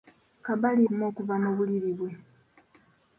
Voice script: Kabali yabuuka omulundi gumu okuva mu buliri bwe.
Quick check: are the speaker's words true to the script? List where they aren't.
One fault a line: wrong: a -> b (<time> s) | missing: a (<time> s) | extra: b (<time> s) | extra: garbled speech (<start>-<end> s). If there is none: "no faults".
missing: yabuuka omulundi (0.8 s)